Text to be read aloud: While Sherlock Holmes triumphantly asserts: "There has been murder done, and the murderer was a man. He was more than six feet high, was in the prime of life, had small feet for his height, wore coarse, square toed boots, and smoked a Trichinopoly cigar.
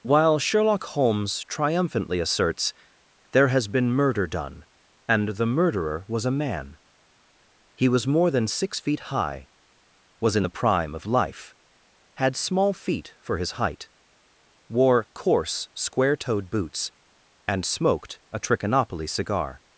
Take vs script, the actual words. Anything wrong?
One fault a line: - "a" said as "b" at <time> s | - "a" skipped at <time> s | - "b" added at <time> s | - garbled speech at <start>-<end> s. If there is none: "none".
none